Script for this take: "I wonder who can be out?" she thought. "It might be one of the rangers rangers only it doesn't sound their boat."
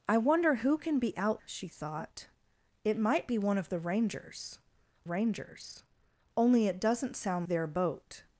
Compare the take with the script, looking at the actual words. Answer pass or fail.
pass